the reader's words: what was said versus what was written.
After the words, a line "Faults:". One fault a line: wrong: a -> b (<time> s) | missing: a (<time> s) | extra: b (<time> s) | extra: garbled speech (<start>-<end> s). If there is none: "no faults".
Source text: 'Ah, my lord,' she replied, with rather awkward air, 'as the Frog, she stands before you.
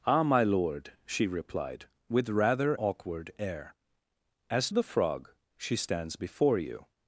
'Ah, my lord,' she replied, with rather awkward air, 'as the Frog, she stands before you.
Faults:
no faults